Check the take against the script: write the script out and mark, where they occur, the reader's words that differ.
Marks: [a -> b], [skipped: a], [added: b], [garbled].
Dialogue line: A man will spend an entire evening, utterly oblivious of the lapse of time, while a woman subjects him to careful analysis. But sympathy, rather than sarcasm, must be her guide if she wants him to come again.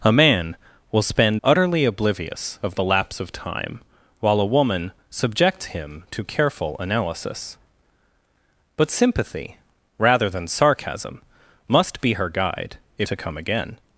A man will spend [skipped: an entire evening,] utterly oblivious of the lapse of time, while a woman subjects him to careful analysis. But sympathy, rather than sarcasm, must be her guide if [skipped: she wants him] to come again.